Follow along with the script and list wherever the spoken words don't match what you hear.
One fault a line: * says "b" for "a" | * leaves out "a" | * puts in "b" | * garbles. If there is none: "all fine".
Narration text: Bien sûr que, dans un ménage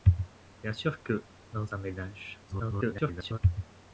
* garbles